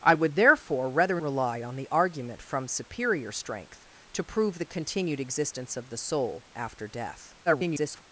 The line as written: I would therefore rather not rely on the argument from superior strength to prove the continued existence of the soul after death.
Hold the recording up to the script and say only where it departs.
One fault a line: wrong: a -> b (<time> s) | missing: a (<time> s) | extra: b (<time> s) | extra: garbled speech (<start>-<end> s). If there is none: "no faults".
missing: not (1.2 s)
extra: garbled speech (7.5-8.0 s)